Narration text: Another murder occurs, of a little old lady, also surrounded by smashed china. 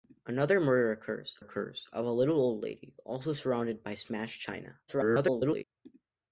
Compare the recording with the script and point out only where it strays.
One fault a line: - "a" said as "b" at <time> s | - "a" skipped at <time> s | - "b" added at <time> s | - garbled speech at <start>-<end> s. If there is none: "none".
- "occurs" added at 1.4 s
- garbled speech at 4.9-5.6 s